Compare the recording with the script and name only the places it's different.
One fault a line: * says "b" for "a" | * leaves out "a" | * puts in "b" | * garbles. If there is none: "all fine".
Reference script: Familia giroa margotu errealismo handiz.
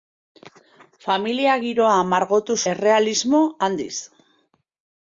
all fine